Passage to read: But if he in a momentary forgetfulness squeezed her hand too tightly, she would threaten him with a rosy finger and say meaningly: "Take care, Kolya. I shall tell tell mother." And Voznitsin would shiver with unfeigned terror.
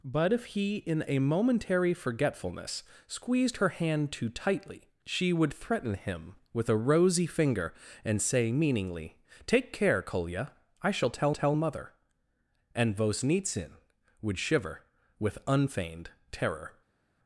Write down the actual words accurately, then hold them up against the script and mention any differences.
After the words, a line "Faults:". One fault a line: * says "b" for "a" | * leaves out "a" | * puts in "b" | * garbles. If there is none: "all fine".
But if he in a momentary forgetfulness squeezed her hand too tightly, she would threaten him with a rosy finger and say meaningly: "Take care, Kolya. I shall tell tell mother." And Voznitsin would shiver with unfeigned terror.
Faults:
all fine